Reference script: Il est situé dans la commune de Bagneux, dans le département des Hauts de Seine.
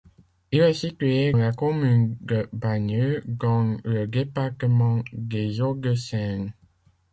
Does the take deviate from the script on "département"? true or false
false